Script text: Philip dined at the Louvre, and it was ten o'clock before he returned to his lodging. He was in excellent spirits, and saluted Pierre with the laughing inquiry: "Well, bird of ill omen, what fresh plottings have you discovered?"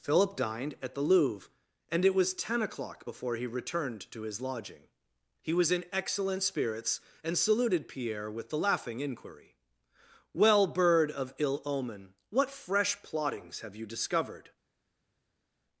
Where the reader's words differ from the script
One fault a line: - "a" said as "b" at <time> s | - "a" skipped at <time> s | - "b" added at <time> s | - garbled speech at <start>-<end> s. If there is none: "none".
none